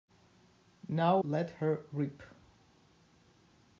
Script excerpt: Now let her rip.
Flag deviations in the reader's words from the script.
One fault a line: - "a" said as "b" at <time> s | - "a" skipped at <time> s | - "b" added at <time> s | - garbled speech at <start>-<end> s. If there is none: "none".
none